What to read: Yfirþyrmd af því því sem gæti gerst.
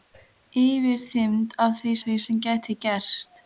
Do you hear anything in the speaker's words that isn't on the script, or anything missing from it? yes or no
no